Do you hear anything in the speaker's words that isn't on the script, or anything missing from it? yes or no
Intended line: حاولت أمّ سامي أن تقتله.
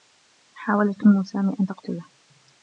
no